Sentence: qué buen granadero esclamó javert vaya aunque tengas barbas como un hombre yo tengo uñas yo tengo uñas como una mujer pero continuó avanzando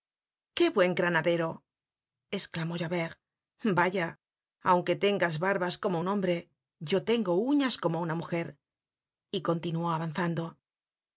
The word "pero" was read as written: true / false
false